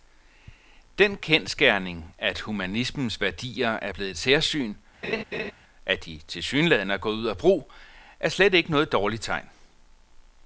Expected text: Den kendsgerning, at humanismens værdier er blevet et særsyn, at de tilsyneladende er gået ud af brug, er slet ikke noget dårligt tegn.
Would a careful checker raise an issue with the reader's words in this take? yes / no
no